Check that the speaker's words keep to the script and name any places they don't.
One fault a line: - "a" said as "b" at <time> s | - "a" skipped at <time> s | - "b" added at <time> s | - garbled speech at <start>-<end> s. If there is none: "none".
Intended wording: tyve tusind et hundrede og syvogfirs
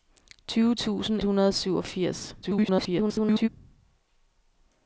- "et" skipped at 1.2 s
- garbled speech at 2.4-3.5 s